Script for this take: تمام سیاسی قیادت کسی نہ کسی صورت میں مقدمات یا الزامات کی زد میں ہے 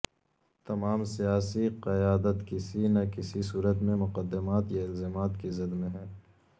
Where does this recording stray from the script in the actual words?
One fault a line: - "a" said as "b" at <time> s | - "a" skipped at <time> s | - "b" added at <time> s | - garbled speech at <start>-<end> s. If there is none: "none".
none